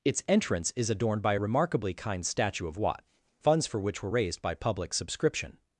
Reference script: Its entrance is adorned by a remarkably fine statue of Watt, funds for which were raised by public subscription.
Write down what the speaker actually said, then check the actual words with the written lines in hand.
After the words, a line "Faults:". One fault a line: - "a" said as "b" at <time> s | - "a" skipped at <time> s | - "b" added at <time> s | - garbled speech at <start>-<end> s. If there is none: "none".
Its entrance is adorned by a remarkably kind statue of Watt, funds for which were raised by public subscription.
Faults:
- "fine" said as "kind" at 1.9 s